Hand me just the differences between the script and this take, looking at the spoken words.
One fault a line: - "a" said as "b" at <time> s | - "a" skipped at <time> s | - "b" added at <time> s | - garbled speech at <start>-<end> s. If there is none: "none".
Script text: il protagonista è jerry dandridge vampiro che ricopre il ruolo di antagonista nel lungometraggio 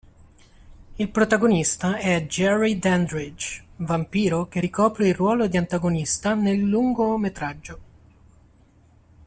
none